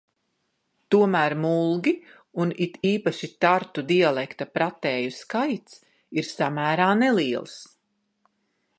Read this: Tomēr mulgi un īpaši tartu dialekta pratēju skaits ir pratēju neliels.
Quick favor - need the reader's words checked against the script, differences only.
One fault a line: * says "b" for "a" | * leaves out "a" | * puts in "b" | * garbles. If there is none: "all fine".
* puts in "it"
* says "samērā" for "pratēju"